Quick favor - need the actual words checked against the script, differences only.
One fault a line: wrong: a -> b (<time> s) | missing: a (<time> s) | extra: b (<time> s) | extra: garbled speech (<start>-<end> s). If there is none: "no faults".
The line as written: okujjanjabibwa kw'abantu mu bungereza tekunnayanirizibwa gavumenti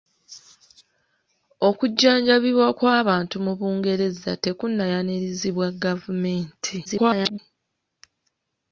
extra: garbled speech (6.8-7.4 s)